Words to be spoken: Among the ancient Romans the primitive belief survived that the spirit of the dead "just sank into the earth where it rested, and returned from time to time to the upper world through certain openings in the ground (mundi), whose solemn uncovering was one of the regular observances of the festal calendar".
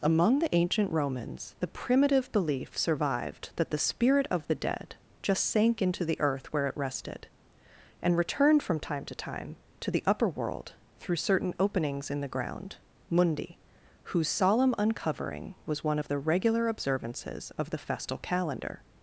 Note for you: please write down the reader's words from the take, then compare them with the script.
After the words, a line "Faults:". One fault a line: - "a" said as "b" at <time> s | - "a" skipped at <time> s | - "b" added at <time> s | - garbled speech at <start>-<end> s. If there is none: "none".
Among the ancient Romans the primitive belief survived that the spirit of the dead "just sank into the earth where it rested, and returned from time to time to the upper world through certain openings in the ground (mundi), whose solemn uncovering was one of the regular observances of the festal calendar".
Faults:
none